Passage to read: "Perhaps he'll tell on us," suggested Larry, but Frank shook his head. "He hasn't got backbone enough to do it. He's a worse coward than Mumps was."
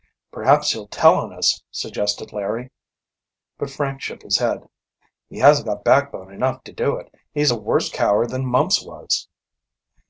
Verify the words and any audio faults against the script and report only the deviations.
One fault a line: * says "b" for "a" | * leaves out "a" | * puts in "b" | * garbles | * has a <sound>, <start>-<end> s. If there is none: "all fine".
all fine